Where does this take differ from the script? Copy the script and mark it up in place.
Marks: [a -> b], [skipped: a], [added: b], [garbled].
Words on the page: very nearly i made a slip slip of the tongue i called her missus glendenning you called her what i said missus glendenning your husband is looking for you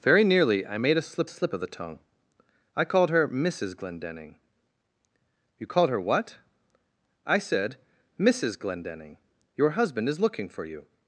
very nearly i made a slip slip of the tongue i called her missus glendenning you called her what i said missus glendenning your husband is looking for you